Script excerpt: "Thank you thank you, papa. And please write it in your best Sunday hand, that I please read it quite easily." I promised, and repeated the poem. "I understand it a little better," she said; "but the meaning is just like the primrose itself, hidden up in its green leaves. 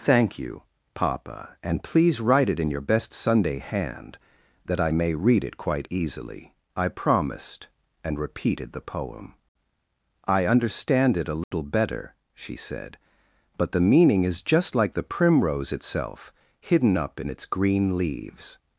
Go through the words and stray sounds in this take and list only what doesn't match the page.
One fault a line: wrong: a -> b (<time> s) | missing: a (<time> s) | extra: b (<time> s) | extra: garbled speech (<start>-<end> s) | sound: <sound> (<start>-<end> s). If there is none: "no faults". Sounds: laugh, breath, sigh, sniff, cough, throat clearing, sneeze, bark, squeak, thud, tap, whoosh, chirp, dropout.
missing: thank you (0.6 s)
wrong: please -> may (4.9 s)
sound: dropout (11.4-11.5 s)